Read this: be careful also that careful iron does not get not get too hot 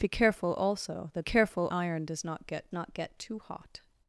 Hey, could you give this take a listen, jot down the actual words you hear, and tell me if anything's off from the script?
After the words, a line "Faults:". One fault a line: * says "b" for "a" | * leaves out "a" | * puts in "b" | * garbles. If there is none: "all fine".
be careful also that careful iron does not get not get too hot
Faults:
all fine